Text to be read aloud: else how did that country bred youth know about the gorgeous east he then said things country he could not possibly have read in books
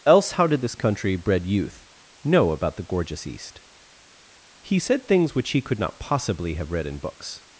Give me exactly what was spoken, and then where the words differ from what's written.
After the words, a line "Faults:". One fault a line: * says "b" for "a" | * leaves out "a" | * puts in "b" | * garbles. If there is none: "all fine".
else how did this country bred youth know about the gorgeous east he said things which he could not possibly have read in books
Faults:
* says "this" for "that"
* leaves out "then"
* says "which" for "country"